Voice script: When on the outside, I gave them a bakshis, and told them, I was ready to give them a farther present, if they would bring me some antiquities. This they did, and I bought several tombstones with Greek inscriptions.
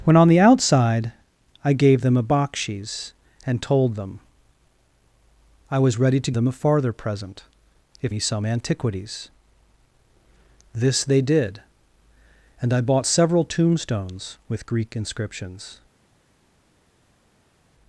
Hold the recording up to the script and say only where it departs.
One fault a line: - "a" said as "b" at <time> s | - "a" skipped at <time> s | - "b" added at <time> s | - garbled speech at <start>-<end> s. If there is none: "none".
- "give" skipped at 6.3 s
- "they would bring" skipped at 8.1 s